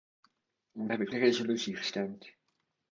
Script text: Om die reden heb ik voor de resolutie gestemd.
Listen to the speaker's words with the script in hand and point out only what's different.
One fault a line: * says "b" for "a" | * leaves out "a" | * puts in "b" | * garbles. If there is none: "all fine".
* leaves out "die reden"
* leaves out "voor"